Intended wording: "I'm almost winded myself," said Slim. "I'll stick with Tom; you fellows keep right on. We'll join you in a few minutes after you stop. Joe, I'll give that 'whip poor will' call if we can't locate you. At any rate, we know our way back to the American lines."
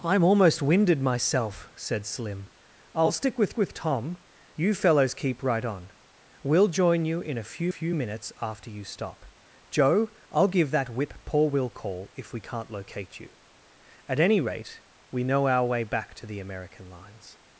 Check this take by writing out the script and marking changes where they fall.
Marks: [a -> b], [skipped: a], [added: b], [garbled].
"I'm almost winded myself," said Slim. "I'll stick with [added: with] Tom; you fellows keep right on. We'll join you in a few [added: few] minutes after you stop. Joe, I'll give that 'whip poor will' call if we can't locate you. At any rate, we know our way back to the American lines."